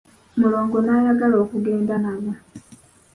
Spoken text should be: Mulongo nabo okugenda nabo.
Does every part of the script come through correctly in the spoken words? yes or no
no